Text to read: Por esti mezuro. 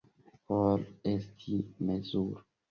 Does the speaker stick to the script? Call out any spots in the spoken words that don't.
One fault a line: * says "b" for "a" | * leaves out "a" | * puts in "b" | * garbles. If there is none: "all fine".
all fine